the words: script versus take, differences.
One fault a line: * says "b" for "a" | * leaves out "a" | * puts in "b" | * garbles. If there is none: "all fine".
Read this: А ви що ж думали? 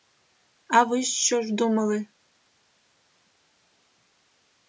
all fine